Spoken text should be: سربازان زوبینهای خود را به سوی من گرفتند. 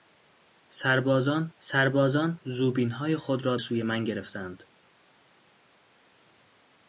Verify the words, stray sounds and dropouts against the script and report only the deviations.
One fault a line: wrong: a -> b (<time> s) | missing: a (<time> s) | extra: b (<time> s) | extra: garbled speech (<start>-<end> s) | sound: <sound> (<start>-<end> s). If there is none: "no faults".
extra: سربازان (1.6 s)
missing: به (3.6 s)